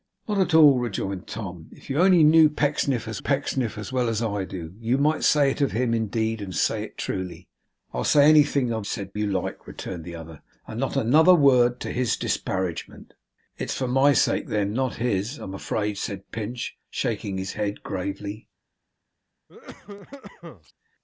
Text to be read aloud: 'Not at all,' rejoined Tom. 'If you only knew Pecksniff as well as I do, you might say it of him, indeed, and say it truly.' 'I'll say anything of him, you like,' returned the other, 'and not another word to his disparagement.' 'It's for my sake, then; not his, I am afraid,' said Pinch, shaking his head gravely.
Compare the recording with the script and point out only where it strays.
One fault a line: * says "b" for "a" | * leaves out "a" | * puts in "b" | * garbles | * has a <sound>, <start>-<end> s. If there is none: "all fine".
* puts in "Pecksniff as"
* says "said" for "him"
* has a cough, 19.5-20.7 s